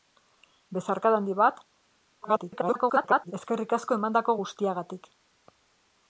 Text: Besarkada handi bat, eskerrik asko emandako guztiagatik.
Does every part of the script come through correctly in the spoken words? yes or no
no